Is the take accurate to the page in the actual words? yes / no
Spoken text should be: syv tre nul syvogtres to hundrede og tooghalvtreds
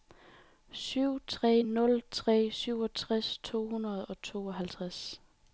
no